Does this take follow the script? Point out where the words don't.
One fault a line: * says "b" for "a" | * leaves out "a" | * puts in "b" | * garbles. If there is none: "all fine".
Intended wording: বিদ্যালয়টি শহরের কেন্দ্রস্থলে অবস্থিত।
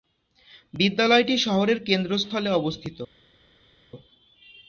all fine